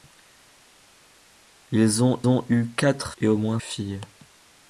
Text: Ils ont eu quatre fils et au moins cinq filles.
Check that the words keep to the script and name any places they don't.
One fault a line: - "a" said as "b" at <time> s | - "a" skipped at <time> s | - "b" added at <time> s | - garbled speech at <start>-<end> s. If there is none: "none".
- "ont" added at 2.3 s
- "fils" skipped at 3.1 s
- "cinq" skipped at 3.6 s